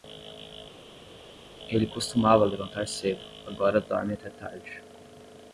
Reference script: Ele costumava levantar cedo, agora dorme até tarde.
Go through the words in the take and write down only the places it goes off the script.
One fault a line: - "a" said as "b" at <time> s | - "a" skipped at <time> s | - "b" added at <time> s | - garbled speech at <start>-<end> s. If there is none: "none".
none